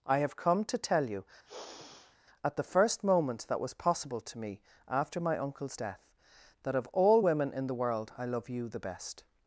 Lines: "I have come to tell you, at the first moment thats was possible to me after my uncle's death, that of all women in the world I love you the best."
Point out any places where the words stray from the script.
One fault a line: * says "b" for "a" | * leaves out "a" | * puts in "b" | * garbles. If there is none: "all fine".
* says "that" for "thats"